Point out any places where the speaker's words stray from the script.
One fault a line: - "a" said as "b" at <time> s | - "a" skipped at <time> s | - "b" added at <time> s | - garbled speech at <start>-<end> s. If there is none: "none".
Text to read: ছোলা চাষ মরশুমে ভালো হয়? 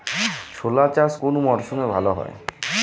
- "কোন" added at 1.2 s